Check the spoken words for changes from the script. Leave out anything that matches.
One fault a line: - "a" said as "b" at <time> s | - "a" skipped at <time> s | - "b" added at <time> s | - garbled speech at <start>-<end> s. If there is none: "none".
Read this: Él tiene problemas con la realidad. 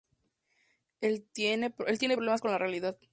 none